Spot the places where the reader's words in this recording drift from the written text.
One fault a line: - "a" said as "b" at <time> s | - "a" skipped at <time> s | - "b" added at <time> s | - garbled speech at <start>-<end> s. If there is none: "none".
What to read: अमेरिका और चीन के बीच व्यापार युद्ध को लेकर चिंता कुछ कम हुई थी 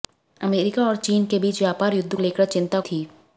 - "को" skipped at 2.1 s
- "कुछ कम हुई" skipped at 2.8 s